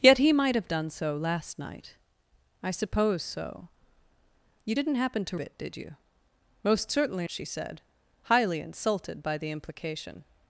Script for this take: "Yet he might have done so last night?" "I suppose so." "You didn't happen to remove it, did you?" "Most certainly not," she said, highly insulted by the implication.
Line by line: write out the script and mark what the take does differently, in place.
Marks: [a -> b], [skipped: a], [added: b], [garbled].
"Yet he might have done so last night?" "I suppose so." "You didn't happen to [skipped: remove] it, did you?" "Most certainly [skipped: not,"] she said, highly insulted by the implication.